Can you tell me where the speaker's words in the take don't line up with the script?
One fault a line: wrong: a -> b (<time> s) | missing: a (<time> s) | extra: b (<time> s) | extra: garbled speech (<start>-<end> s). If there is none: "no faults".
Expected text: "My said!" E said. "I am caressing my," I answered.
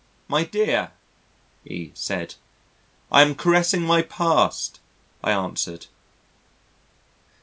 wrong: said -> dear (0.5 s)
extra: past (4.0 s)